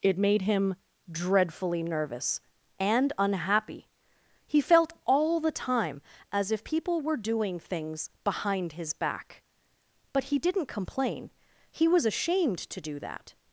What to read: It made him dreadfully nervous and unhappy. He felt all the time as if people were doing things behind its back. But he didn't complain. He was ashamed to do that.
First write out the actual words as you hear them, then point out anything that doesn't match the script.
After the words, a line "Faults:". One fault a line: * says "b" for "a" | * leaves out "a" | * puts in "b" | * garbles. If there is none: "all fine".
It made him dreadfully nervous and unhappy. He felt all the time as if people were doing things behind his back. But he didn't complain. He was ashamed to do that.
Faults:
* says "his" for "its"